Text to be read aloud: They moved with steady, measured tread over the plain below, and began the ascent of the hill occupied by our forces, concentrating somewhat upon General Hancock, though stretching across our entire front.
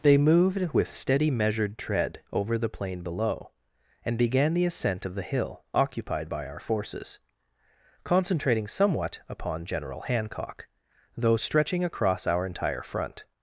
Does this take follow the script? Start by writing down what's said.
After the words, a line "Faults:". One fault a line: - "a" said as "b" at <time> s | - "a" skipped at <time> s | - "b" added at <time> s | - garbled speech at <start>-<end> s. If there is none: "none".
They moved with steady, measured tread over the plain below, and began the ascent of the hill occupied by our forces, concentrating somewhat upon General Hancock, though stretching across our entire front.
Faults:
none